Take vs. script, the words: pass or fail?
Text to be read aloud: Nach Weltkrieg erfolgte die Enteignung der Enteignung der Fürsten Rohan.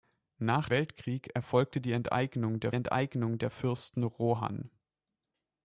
pass